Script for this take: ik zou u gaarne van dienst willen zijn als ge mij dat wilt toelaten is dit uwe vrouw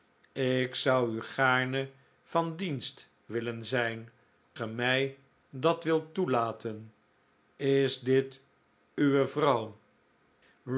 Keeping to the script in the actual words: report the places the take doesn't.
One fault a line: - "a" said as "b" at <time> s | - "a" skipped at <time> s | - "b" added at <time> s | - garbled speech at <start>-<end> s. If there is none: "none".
- "als" skipped at 4.1 s